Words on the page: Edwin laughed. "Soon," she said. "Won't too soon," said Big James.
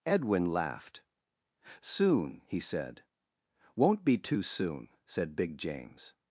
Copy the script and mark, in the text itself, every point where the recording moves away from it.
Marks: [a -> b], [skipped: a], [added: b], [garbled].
Edwin laughed. "Soon," [she -> he] said. "Won't [added: be] too soon," said Big James.